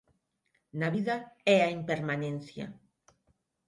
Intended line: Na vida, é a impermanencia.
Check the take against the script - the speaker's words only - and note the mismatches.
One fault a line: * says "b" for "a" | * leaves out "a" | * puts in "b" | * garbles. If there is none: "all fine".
all fine